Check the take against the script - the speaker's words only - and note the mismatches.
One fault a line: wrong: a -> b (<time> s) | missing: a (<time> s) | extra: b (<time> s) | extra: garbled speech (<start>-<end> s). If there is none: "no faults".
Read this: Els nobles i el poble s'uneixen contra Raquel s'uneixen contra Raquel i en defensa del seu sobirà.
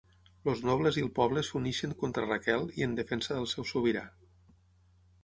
missing: s'uneixen contra Raquel (2.6 s)